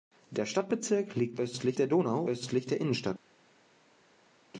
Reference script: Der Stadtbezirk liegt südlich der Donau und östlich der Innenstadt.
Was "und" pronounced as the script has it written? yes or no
no